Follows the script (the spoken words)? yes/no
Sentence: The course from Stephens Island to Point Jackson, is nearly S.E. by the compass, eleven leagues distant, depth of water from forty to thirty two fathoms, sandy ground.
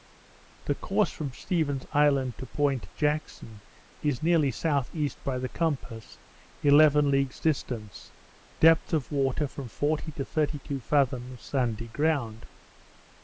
yes